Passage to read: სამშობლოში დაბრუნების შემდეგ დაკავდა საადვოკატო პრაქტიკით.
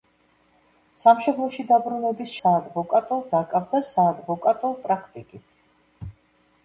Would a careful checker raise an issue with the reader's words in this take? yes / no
yes